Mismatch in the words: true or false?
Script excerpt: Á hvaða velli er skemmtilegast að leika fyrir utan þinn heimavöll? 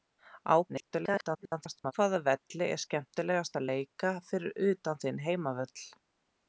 true